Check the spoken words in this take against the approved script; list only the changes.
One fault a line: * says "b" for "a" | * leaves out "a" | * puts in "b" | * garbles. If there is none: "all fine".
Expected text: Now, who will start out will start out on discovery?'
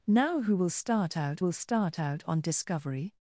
all fine